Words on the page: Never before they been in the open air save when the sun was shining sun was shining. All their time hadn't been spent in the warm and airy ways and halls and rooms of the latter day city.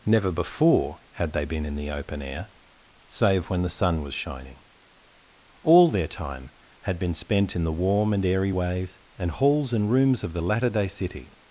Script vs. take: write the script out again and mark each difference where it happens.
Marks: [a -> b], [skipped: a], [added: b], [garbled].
Never before [added: had] they been in the open air save when the sun was shining [skipped: sun was shining.] All their time [hadn't -> had] been spent in the warm and airy ways and halls and rooms of the latter day city.